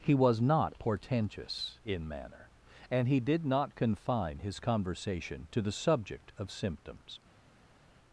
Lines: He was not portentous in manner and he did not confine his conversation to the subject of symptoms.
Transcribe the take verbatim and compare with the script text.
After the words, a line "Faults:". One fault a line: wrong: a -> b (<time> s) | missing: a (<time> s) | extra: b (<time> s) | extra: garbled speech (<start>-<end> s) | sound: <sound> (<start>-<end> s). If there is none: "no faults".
He was not portentous in manner and he did not confine his conversation to the subject of symptoms.
Faults:
no faults